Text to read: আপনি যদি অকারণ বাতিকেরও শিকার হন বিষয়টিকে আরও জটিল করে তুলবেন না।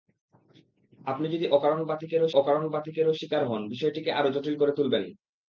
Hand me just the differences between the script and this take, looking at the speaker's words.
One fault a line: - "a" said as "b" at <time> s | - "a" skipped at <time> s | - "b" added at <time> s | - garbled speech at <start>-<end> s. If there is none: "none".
- "অকারণ বাতিকেরও" added at 2.3 s